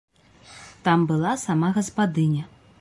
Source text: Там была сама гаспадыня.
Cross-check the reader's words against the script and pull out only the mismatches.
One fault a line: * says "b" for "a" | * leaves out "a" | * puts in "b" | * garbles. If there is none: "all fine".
all fine